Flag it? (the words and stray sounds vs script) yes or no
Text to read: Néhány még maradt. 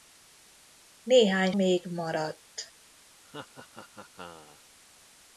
yes